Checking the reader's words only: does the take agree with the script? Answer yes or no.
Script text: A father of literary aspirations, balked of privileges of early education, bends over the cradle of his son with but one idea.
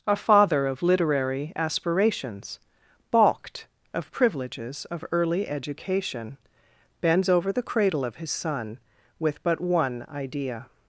yes